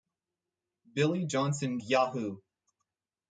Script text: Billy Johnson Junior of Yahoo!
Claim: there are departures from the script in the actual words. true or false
true